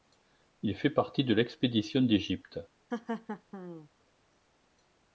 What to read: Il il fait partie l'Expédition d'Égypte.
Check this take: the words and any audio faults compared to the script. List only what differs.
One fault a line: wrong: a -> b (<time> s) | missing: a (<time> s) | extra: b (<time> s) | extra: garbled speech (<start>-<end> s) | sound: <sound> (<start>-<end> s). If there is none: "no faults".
missing: il (0.8 s)
extra: de (1.2 s)
sound: laugh (2.9-3.9 s)